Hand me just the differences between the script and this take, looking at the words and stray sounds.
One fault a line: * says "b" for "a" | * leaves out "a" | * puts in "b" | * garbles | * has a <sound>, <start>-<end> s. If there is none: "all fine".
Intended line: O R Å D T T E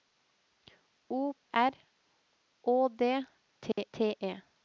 * has a dropout, 3.7-3.8 s